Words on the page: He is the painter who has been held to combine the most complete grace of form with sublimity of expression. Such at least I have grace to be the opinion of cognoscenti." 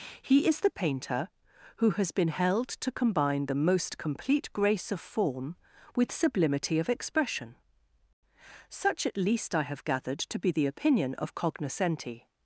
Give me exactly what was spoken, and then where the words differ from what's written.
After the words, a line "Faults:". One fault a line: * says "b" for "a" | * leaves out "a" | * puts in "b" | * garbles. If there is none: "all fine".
He is the painter who has been held to combine the most complete grace of form with sublimity of expression. Such at least I have gathered to be the opinion of cognoscenti."
Faults:
* says "gathered" for "grace"